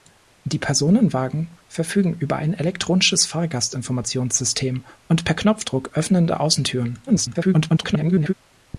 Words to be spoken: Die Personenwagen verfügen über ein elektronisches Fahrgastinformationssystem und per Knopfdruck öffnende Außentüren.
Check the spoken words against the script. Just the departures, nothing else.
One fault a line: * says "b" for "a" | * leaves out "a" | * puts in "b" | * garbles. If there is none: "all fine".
* garbles